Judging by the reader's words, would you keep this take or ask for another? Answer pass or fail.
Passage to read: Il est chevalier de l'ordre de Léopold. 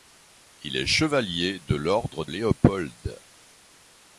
fail